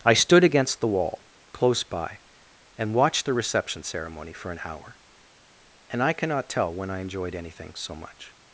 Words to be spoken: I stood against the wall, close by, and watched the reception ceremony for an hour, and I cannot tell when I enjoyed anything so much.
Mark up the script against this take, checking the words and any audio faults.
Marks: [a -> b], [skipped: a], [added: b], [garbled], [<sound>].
I stood against the wall, close by, and watched the reception ceremony for an hour, and I cannot tell when I enjoyed anything so much.